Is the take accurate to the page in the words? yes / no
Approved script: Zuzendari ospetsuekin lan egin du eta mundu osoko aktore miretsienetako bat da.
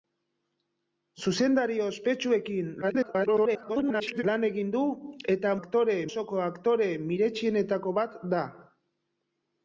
no